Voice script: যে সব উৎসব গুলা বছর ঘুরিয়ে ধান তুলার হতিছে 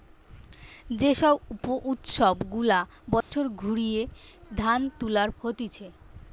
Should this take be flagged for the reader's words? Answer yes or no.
no